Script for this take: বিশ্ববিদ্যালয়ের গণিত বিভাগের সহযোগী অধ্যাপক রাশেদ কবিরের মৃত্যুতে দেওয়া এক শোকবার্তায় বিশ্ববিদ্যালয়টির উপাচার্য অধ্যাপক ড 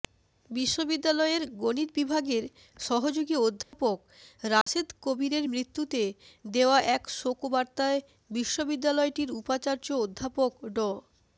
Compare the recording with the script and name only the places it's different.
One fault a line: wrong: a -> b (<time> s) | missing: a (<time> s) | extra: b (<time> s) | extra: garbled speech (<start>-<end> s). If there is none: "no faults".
no faults